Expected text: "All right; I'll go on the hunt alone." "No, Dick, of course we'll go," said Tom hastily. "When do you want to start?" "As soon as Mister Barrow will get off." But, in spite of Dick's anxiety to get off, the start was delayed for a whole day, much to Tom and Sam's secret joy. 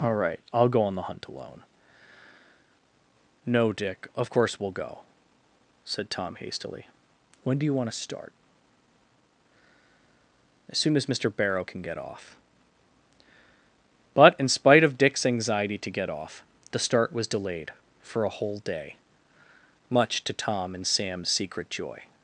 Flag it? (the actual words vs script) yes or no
yes